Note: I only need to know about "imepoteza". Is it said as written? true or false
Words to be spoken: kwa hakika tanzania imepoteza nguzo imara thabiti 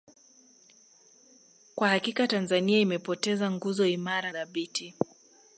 true